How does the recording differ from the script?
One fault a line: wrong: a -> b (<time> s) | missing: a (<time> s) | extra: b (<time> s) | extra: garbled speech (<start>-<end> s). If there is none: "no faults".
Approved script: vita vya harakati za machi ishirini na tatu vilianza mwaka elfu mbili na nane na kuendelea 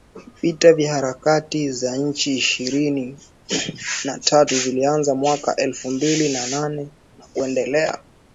no faults